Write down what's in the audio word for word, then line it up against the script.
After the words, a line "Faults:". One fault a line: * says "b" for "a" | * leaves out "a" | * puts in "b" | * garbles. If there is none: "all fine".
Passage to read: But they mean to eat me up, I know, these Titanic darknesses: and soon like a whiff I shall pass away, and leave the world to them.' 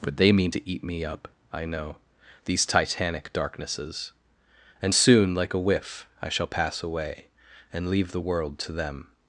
But they mean to eat me up, I know, these Titanic darknesses: and soon like a whiff I shall pass away, and leave the world to them.'
Faults:
all fine